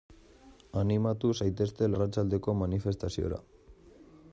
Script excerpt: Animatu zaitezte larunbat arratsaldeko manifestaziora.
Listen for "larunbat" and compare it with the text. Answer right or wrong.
wrong